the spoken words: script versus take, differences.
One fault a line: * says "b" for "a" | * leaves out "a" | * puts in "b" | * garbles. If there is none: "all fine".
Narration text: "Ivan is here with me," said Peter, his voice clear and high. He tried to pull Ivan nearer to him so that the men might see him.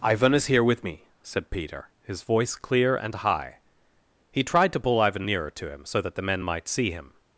all fine